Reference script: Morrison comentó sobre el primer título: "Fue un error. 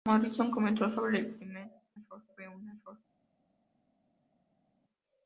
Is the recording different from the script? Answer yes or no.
yes